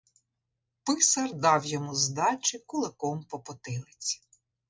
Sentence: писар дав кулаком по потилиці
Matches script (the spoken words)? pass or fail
fail